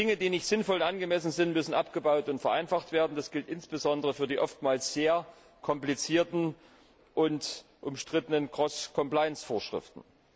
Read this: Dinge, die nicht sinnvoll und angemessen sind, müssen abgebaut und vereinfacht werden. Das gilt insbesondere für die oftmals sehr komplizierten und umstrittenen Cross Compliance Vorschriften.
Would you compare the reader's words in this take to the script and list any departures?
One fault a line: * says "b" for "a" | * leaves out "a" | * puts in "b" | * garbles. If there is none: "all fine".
all fine